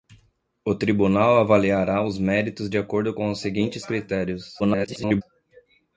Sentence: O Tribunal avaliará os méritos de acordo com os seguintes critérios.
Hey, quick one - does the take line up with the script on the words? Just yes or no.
no